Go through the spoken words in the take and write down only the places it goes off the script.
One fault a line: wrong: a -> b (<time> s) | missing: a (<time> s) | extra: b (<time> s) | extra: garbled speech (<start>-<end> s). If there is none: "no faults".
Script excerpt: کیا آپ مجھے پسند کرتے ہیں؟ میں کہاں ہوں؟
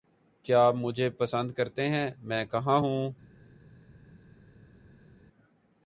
no faults